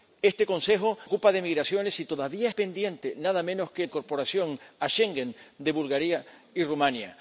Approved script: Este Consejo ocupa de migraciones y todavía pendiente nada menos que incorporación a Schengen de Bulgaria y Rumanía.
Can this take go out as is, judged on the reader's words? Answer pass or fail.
pass